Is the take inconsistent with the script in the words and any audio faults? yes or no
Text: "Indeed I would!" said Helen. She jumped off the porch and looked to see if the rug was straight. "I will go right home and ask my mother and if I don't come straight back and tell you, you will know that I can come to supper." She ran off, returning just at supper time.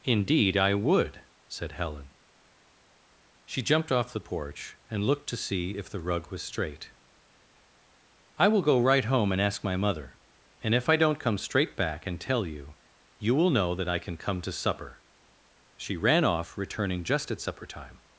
no